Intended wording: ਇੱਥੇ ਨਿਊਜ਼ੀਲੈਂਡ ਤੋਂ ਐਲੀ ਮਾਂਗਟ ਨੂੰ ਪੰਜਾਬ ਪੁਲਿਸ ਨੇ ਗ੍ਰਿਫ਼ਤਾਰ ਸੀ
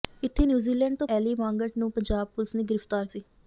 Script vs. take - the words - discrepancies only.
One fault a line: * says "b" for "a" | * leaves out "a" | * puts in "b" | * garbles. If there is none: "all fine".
all fine